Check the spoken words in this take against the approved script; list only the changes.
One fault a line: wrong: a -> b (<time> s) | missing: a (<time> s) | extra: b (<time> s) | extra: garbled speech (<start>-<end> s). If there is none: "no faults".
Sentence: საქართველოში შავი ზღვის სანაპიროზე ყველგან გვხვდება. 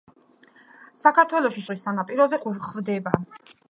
missing: შავი (1.6 s)
missing: ყველგან (2.4 s)